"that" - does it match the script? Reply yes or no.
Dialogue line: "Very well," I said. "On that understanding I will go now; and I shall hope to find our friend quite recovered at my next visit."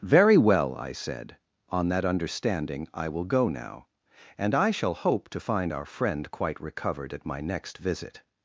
yes